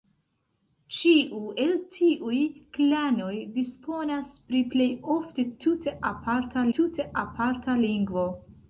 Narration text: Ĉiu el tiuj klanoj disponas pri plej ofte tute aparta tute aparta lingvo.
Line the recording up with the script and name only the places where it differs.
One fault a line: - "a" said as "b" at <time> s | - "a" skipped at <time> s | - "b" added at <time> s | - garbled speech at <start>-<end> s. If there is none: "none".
none